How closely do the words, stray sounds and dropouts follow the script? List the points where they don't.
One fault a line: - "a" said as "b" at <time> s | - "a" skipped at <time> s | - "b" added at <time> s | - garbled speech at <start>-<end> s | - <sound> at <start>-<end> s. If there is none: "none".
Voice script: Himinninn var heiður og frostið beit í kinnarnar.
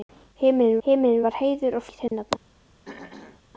- "himinninn" added at 0.9 s
- "frostið beit" skipped at 1.9 s
- dropout at 2.1-2.1 s
- throat clearing at 2.9-3.4 s